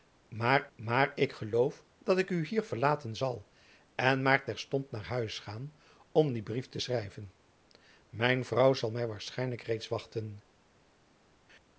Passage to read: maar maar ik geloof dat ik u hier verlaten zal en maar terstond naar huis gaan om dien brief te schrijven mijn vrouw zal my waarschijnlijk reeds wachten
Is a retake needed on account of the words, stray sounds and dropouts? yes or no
no